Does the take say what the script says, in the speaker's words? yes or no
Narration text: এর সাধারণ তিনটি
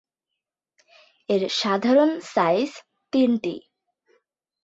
no